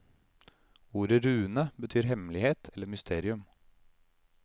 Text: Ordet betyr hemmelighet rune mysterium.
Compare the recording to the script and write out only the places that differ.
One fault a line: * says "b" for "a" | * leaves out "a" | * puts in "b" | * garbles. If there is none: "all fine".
* puts in "rune"
* says "eller" for "rune"